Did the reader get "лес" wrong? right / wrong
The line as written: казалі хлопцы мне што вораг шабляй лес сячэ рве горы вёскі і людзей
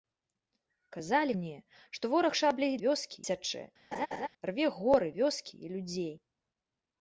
wrong